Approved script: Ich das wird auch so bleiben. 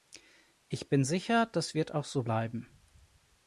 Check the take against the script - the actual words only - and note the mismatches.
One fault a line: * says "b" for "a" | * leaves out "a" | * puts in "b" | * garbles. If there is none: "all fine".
* puts in "bin sicher"